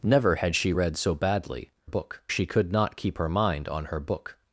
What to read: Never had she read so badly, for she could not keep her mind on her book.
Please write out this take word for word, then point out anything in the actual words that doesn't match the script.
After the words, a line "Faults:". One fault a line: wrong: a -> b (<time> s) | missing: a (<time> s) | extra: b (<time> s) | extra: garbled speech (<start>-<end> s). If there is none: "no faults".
Never had she read so badly, book she could not keep her mind on her book.
Faults:
wrong: for -> book (1.8 s)